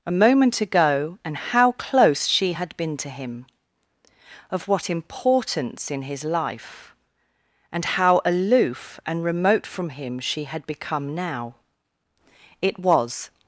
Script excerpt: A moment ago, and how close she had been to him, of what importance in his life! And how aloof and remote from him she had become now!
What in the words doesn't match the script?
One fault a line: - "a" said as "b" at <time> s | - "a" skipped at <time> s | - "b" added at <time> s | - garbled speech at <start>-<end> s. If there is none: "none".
- "It was" added at 12.6 s